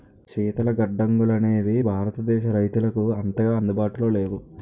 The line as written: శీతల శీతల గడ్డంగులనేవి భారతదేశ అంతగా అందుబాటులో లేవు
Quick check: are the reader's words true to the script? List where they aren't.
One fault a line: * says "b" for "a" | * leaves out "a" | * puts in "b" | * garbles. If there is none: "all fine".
* leaves out "శీతల"
* puts in "రైతులకు"